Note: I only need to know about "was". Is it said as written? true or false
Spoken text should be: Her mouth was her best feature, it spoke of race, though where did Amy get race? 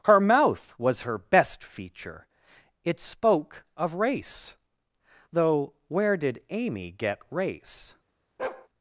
true